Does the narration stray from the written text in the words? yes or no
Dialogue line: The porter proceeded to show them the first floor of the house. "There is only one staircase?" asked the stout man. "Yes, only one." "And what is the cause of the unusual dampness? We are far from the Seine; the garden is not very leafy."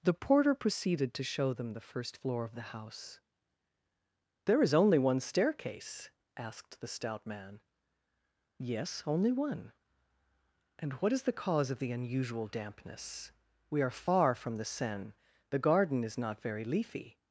no